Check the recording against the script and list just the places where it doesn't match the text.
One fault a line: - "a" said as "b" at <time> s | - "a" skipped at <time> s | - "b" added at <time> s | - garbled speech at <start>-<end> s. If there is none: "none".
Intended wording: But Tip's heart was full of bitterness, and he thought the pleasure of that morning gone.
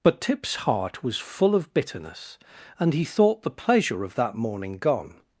none